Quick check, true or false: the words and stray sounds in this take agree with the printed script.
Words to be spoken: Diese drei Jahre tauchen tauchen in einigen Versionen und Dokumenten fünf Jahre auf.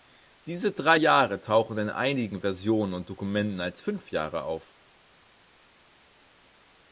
false